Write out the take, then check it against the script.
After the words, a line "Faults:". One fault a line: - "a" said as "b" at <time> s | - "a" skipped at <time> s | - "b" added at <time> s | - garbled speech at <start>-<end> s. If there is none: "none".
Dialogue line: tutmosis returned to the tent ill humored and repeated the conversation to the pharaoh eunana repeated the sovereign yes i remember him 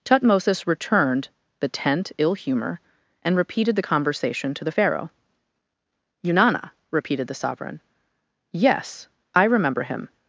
tutmosis returned the tent ill humor and repeated the conversation to the pharaoh eunana repeated the sovereign yes i remember him
Faults:
- "to" skipped at 1.3 s
- "humored" said as "humor" at 2.3 s